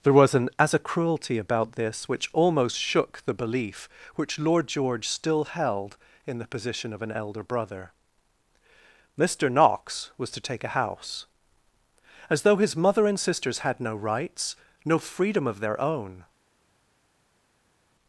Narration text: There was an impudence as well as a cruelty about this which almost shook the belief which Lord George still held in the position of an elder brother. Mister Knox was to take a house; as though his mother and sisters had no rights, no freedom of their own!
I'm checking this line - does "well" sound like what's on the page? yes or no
no